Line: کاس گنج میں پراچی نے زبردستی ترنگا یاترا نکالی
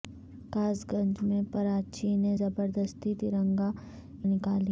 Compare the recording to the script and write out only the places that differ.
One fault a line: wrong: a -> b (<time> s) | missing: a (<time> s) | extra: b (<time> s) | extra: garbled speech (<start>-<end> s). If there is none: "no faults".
missing: یاترا (3.7 s)